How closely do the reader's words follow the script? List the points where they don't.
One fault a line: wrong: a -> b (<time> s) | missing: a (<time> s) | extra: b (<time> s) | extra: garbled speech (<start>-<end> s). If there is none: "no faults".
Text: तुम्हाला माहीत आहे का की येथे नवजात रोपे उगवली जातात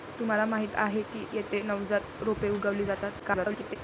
missing: का (1.0 s)
extra: garbled speech (3.2-3.8 s)